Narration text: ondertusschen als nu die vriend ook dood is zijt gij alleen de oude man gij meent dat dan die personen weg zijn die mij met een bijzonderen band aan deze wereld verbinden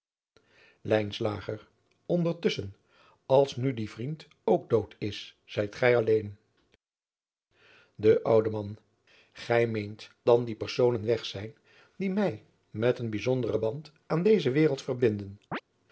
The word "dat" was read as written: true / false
false